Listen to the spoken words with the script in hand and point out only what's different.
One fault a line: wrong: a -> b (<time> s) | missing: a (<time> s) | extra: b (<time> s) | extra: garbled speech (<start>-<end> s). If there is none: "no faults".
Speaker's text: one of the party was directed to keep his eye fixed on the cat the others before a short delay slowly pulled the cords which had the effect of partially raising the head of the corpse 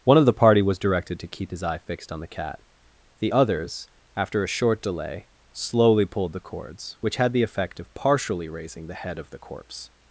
wrong: before -> after (4.2 s)